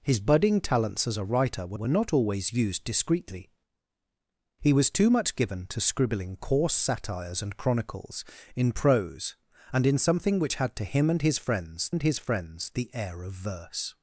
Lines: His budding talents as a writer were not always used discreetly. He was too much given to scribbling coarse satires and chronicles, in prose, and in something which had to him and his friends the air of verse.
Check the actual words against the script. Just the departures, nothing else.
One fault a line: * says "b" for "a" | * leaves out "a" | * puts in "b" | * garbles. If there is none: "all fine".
* puts in "were"
* puts in "and his friends"